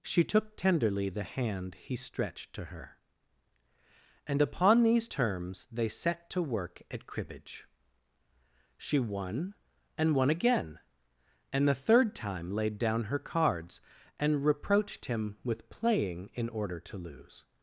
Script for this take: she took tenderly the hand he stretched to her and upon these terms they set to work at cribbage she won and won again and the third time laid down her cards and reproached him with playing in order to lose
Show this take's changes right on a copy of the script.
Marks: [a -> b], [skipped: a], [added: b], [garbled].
she took tenderly the hand he stretched to her and upon these terms they set to work at cribbage she won and won again and the third time laid down her cards and reproached him with playing in order to lose